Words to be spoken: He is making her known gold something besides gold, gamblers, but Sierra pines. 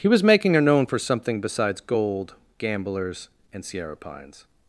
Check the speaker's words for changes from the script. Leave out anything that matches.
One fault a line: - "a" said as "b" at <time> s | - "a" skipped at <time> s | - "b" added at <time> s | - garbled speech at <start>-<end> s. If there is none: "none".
- "is" said as "was" at 0.1 s
- "gold" said as "for" at 0.9 s
- "but" said as "and" at 3.5 s